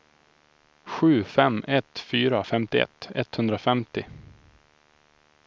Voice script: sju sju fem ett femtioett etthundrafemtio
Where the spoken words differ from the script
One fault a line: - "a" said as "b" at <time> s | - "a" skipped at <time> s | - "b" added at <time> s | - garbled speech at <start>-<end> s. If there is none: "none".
- "sju" skipped at 1.2 s
- "fyra" added at 2.0 s